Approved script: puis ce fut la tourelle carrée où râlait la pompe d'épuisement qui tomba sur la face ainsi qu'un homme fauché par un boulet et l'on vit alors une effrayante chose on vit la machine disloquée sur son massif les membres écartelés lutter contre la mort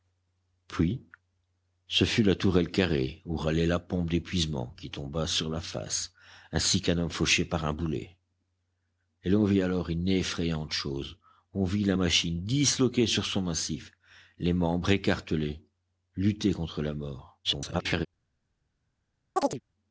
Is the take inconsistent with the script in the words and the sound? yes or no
yes